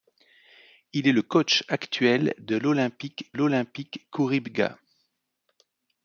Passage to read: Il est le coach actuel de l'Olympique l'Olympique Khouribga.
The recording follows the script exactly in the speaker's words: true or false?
true